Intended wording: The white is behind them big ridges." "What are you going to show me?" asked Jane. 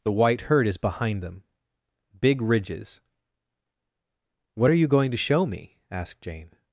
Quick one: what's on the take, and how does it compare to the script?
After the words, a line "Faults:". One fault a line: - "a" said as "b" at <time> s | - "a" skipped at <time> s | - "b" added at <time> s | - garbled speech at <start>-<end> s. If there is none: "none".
The white herd is behind them big ridges." "What are you going to show me?" asked Jane.
Faults:
- "herd" added at 0.4 s